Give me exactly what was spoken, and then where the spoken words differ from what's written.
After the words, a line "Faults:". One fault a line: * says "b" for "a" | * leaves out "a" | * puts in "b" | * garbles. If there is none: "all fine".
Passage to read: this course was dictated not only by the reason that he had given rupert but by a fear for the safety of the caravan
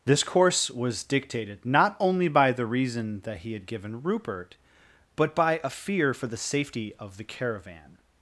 this course was dictated not only by the reason that he had given rupert but by a fear for the safety of the caravan
Faults:
all fine